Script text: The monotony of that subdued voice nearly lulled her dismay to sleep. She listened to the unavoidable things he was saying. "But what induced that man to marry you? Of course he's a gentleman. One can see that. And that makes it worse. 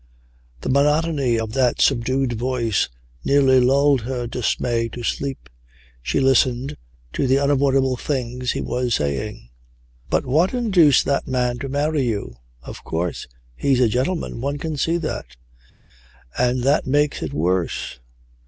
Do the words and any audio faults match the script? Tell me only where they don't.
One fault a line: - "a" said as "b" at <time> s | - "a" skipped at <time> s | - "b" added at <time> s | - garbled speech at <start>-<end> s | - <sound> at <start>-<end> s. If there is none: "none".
none